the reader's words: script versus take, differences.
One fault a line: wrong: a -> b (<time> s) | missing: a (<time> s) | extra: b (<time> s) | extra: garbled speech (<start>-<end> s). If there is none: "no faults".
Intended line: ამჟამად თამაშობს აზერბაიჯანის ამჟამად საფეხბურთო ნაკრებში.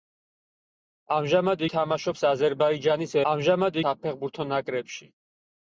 no faults